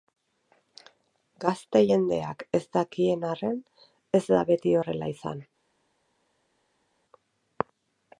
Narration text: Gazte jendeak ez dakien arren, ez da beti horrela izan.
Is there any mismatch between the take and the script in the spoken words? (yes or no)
no